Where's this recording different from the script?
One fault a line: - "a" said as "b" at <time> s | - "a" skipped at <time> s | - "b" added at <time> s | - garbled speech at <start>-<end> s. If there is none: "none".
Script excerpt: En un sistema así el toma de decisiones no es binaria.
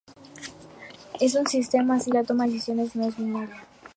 - "el" said as "la" at 2.1 s